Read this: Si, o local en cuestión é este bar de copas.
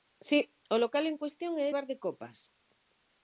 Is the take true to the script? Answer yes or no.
no